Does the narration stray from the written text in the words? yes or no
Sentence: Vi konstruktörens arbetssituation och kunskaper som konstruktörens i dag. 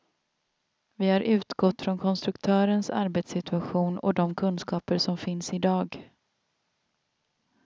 yes